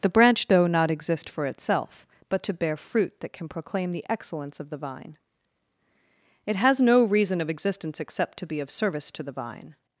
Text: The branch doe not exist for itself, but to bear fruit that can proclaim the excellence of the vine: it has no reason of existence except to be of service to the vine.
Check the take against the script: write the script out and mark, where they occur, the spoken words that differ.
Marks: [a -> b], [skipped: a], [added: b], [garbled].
The branch doe not exist for itself, but to bear fruit that can proclaim the excellence of the vine: it has no reason of existence except to be of service to the vine.